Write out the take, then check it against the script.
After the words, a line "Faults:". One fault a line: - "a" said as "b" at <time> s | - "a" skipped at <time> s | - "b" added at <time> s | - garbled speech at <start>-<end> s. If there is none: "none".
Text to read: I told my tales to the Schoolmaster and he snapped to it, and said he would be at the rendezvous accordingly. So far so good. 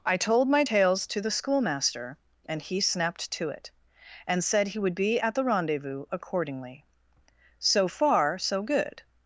I told my tales to the Schoolmaster and he snapped to it, and said he would be at the rendezvous accordingly. So far so good.
Faults:
none